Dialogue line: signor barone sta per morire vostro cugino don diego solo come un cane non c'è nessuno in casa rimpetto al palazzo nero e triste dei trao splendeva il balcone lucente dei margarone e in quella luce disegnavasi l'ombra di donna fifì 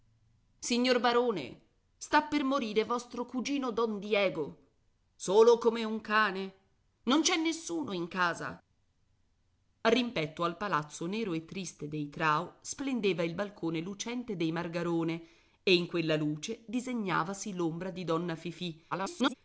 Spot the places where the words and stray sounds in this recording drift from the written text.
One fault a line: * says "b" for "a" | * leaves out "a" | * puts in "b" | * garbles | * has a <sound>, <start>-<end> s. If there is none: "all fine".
* garbles